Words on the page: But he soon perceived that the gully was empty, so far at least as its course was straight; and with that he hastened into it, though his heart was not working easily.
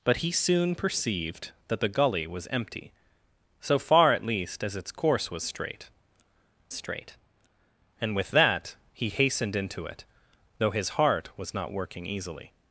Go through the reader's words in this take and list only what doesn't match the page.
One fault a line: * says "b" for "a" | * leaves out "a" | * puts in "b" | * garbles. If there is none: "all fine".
* puts in "straight"